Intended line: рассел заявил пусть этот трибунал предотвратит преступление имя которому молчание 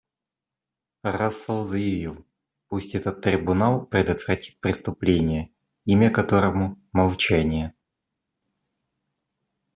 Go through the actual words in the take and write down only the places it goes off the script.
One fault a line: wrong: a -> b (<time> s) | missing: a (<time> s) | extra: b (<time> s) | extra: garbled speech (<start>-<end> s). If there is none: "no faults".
no faults